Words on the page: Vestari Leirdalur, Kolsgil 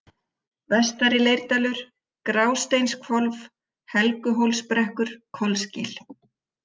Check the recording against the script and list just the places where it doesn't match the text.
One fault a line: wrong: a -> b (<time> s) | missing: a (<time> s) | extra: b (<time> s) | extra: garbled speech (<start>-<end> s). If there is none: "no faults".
extra: Grásteinshvolf Helguhólsbrekkur (2.3 s)